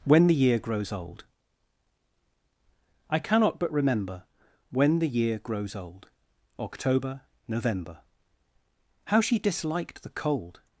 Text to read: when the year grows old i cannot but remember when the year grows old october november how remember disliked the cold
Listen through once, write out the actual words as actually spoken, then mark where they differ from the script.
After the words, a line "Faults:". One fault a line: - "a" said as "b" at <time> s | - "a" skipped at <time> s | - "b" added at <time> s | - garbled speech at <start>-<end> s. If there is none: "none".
when the year grows old i cannot but remember when the year grows old october november how she disliked the cold
Faults:
- "remember" said as "she" at 9.2 s